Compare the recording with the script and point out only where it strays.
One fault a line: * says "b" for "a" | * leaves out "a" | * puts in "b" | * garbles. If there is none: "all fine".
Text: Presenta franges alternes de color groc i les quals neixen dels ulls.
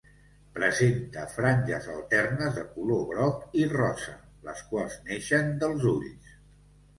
* puts in "rosa"